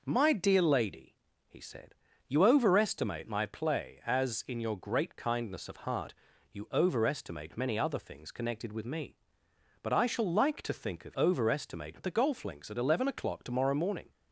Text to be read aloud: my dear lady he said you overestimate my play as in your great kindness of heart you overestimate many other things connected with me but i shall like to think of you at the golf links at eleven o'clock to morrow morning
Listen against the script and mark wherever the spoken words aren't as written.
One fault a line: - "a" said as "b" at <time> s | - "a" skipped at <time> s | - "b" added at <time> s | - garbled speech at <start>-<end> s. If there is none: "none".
- "you" said as "overestimate" at 11.2 s